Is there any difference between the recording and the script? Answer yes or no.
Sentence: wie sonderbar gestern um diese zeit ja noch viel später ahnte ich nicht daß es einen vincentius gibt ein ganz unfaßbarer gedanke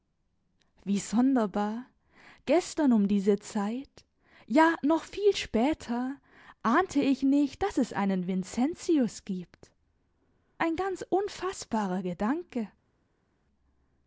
no